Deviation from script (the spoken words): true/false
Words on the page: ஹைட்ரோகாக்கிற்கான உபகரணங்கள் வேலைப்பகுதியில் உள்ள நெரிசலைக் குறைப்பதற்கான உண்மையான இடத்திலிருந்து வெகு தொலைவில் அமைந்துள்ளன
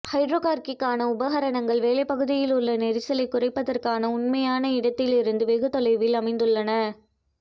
false